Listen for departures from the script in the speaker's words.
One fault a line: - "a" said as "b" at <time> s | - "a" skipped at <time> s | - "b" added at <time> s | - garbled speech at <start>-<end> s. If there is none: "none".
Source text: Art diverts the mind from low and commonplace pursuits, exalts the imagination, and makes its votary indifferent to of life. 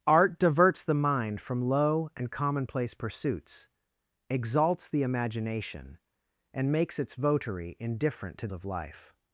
none